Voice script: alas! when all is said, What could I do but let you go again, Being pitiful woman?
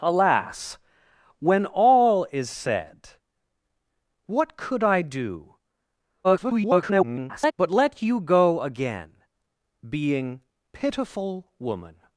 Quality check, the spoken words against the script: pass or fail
fail